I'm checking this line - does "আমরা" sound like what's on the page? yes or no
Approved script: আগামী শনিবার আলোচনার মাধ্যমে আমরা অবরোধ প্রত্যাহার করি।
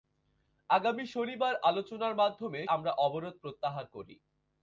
yes